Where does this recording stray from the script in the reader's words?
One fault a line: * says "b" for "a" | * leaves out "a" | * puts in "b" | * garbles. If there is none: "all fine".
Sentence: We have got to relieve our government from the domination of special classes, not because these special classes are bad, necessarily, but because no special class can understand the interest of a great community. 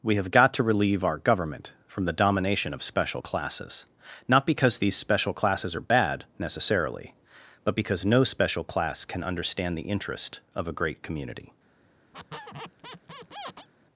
all fine